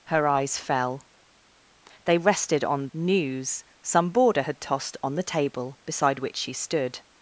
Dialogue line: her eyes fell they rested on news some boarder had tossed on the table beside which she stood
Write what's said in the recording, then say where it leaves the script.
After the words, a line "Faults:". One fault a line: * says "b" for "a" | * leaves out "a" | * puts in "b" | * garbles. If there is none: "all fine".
her eyes fell they rested on news some boarder had tossed on the table beside which she stood
Faults:
all fine